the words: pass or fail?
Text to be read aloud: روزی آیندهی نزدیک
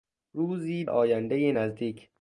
pass